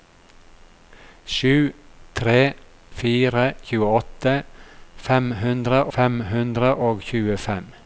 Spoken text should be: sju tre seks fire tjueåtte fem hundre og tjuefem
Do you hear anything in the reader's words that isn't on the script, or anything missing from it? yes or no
yes